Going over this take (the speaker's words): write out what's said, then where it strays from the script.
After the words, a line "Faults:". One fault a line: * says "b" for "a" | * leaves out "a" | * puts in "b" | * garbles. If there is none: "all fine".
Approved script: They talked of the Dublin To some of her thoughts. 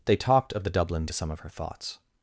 They talked of the Dublin To some of her thoughts.
Faults:
all fine